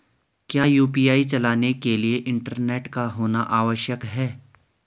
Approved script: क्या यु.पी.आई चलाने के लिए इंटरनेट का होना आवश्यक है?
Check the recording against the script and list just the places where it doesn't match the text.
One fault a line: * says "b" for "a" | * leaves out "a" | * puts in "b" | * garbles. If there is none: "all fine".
all fine